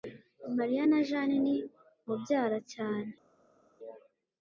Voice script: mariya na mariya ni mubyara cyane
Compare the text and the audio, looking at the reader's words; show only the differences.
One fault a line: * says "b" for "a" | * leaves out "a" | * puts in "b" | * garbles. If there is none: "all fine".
* says "jane" for "mariya"